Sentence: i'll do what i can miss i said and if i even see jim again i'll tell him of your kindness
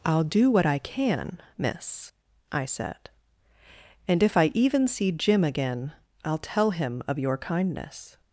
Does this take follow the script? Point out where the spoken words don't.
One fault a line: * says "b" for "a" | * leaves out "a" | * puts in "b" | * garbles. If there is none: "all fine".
all fine